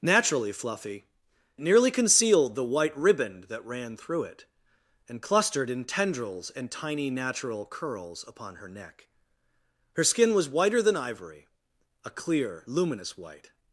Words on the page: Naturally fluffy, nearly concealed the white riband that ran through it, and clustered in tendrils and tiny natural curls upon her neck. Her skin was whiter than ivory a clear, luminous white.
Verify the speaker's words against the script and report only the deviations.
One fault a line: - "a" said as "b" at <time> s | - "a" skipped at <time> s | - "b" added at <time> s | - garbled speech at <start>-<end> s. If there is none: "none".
none